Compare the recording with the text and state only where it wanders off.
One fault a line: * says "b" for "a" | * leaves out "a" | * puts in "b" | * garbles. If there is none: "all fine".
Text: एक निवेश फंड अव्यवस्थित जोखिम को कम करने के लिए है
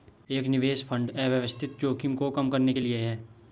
all fine